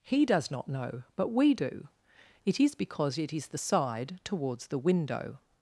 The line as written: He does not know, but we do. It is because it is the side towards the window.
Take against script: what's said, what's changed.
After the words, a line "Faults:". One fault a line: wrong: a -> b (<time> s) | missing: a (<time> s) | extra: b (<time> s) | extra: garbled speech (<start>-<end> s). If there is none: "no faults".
He does not know, but we do. It is because it is the side towards the window.
Faults:
no faults